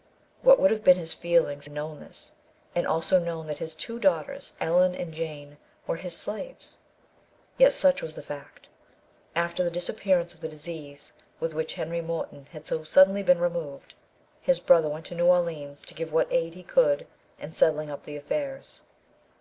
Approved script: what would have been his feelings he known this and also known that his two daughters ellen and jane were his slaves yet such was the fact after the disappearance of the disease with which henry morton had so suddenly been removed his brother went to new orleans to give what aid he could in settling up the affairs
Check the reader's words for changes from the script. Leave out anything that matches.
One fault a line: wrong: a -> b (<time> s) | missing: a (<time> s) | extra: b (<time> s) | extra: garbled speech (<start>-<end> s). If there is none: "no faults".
no faults